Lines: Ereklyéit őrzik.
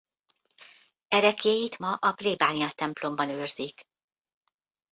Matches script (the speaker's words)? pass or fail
fail